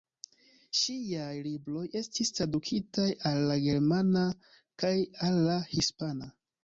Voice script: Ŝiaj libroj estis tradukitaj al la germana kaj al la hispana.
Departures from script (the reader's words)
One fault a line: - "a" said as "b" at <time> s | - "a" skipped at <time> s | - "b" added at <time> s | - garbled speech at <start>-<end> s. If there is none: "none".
none